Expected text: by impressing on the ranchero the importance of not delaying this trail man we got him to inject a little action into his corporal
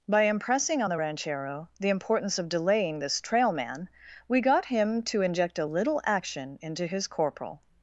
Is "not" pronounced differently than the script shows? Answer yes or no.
yes